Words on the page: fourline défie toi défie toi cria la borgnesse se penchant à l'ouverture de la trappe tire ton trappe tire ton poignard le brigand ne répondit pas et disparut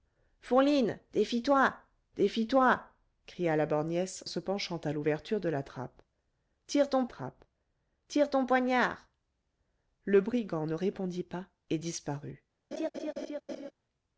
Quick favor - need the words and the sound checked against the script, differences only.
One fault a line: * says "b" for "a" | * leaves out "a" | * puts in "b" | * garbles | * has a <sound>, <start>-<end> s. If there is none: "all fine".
* has a laugh, 12.7-13.7 s